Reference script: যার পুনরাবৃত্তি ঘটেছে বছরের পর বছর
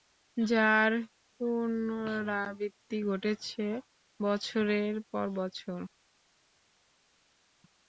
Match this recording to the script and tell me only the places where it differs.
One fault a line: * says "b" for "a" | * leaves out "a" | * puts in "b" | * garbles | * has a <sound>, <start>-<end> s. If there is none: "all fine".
all fine